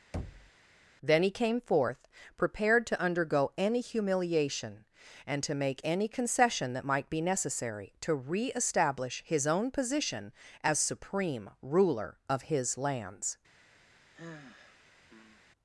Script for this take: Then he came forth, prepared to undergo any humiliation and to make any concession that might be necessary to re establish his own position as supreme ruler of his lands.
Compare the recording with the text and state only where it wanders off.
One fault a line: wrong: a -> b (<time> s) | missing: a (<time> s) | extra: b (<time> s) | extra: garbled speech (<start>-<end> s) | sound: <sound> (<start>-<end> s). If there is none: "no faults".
sound: thud (0.1-0.5 s)
sound: sigh (14.1-15.4 s)